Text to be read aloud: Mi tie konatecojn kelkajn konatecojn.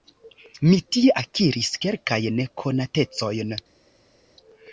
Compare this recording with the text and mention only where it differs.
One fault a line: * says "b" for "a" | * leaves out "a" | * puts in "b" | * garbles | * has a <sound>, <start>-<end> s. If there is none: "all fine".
* says "akiris" for "konatecojn"